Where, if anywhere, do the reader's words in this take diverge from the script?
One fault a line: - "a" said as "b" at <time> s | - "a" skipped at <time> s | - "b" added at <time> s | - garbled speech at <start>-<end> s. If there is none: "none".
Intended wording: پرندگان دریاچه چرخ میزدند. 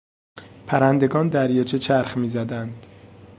none